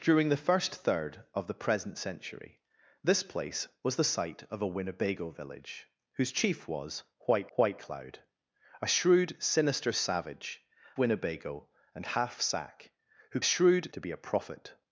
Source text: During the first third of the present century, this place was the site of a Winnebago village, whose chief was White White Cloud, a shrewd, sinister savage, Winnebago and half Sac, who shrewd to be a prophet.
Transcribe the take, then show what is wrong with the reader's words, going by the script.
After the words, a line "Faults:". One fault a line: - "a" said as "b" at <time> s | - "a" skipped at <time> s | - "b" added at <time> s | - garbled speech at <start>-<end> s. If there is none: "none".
During the first third of the present century, this place was the site of a Winnebago village, whose chief was White White Cloud, a shrewd, sinister savage, Winnebago and half Sac, who shrewd to be a prophet.
Faults:
none